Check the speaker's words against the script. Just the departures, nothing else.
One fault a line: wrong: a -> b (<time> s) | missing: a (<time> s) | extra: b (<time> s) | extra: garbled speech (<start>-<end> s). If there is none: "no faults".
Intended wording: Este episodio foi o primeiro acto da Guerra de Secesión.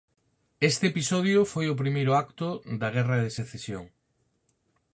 no faults